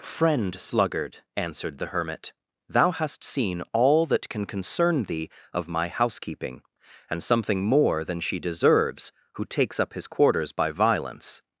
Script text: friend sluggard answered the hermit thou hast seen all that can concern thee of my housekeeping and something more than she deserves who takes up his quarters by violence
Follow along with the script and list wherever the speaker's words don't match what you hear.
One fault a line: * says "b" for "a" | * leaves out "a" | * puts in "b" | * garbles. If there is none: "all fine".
all fine